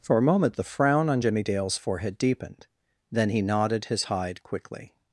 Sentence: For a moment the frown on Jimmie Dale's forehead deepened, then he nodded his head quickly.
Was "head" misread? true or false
true